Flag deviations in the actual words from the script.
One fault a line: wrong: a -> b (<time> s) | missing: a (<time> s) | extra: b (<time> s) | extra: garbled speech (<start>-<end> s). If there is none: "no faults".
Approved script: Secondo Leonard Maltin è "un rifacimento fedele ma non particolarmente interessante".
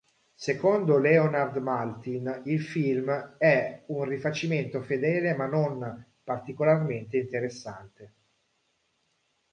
extra: il film (2.5 s)